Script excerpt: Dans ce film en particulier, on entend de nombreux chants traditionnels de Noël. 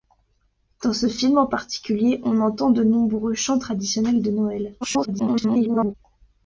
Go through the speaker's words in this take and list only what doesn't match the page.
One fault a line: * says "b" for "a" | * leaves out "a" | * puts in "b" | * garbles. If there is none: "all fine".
* garbles